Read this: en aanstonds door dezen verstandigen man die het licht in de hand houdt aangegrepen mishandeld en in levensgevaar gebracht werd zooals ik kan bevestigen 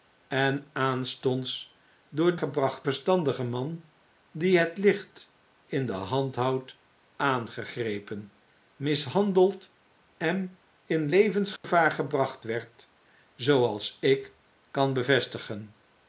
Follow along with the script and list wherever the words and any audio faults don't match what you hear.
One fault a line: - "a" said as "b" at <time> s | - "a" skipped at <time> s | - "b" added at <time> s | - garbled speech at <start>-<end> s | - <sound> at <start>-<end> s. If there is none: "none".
- "dezen" said as "gebracht" at 2.3 s
- dropout at 11.6-11.6 s